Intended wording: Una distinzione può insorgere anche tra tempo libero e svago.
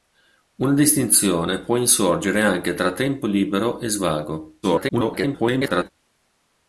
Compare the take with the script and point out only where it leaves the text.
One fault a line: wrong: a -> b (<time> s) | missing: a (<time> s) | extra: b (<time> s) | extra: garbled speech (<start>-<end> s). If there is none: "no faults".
extra: garbled speech (4.6-5.9 s)